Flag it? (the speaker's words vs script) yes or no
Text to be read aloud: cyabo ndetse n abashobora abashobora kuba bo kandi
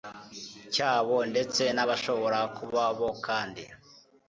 yes